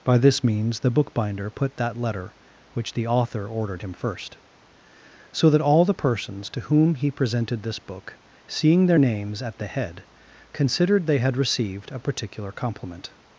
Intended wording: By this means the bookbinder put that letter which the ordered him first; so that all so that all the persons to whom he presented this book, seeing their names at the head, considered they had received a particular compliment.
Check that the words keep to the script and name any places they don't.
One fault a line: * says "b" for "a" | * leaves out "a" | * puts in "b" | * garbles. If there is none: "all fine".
* puts in "author"
* leaves out "so that all"